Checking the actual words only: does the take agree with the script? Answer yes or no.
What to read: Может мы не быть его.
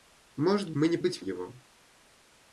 yes